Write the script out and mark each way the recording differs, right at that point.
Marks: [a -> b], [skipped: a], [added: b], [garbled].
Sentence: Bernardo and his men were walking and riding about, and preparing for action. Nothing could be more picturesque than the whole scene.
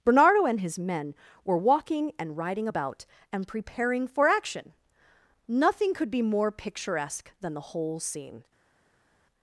Bernardo and his men were walking and riding about, and preparing for action. Nothing could be more picturesque than the whole scene.